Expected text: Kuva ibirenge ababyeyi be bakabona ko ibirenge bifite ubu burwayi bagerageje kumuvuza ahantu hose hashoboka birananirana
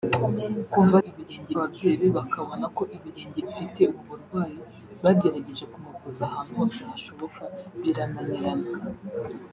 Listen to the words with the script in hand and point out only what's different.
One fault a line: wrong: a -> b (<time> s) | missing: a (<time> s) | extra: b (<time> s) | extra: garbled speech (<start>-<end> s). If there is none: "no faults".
no faults